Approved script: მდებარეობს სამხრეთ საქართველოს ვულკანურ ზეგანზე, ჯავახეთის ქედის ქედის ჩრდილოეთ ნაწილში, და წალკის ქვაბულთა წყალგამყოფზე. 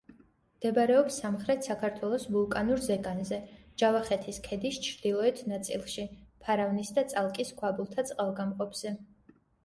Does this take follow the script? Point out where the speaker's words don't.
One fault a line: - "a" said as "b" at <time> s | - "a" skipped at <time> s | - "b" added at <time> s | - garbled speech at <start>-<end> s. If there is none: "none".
- "ქედის" skipped at 4.8 s
- "ფარავნის" added at 6.5 s